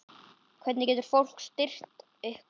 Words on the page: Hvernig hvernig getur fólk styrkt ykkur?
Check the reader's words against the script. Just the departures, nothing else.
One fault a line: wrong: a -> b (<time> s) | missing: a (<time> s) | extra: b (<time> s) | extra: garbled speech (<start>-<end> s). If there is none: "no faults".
missing: hvernig (0.9 s)